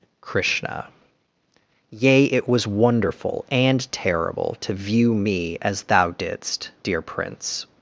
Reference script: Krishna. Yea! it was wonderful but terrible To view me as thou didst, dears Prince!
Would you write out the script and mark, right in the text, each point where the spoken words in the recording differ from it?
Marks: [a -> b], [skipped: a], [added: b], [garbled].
Krishna. Yea! it was wonderful [but -> and] terrible To view me as thou didst, [dears -> dear] Prince!